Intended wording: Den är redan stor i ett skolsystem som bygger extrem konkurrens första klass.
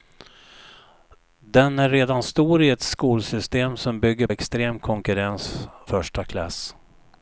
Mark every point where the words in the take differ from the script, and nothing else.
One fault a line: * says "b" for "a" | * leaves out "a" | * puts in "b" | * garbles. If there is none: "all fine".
all fine